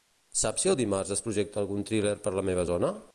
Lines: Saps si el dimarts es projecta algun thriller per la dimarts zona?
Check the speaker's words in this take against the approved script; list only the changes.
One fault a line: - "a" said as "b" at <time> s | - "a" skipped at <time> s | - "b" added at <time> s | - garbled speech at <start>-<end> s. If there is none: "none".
- "dimarts" said as "meva" at 2.5 s